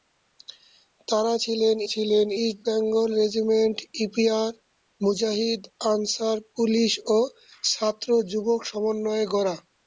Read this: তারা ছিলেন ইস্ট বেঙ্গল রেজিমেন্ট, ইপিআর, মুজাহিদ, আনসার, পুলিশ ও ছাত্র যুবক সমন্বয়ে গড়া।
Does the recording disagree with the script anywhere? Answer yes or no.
yes